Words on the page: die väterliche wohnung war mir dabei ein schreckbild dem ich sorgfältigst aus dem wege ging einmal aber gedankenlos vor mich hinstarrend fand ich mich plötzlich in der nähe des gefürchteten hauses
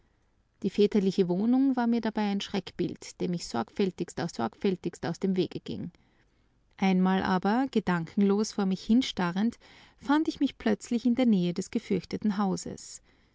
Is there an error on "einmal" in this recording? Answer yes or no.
no